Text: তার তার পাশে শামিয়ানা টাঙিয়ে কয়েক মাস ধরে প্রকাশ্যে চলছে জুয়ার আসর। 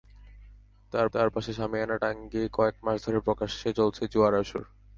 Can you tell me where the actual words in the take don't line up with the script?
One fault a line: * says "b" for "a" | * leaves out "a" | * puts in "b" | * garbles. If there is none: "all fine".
all fine